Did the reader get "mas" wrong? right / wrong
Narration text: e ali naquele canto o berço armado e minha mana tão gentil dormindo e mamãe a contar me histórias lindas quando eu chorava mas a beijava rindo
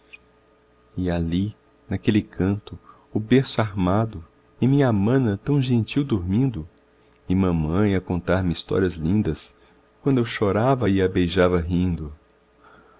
wrong